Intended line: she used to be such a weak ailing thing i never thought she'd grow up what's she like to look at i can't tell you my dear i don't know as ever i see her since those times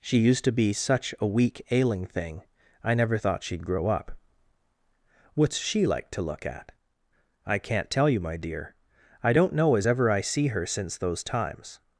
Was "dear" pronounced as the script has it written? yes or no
yes